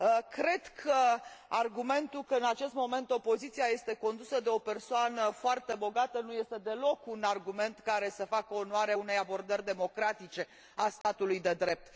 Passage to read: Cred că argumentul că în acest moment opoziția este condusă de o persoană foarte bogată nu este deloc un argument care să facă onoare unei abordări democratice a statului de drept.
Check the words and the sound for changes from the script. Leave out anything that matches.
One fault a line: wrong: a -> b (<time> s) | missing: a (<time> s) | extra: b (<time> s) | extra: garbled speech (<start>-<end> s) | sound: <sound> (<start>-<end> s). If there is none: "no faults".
sound: dropout (11.0-11.0 s)